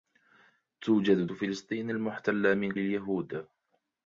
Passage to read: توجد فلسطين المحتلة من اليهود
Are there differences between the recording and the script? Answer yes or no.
no